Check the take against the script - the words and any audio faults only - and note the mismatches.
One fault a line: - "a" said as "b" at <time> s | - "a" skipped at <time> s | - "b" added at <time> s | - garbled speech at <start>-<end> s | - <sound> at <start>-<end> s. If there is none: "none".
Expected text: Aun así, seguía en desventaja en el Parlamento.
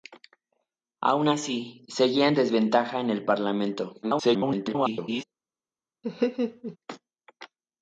- garbled speech at 4.0-5.2 s
- laugh at 6.0-6.8 s